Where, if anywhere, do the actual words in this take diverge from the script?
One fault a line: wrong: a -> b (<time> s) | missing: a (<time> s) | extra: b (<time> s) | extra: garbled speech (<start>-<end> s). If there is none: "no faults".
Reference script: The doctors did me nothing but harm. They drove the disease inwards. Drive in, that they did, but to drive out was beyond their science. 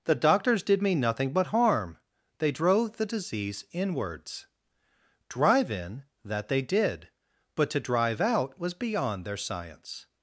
no faults